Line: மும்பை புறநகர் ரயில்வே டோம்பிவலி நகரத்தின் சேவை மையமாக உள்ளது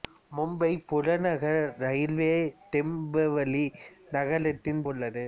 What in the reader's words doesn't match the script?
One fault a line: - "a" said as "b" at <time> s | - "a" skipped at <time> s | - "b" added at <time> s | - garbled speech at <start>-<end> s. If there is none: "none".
- "சேவை மையமாக" skipped at 4.8 s